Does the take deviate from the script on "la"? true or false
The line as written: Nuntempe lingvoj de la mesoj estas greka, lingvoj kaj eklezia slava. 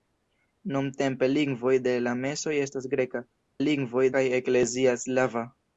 false